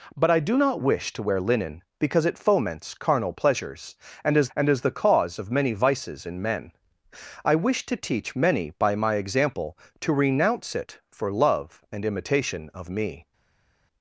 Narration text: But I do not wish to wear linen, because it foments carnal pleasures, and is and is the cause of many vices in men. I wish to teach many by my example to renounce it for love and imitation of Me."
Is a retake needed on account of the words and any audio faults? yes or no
no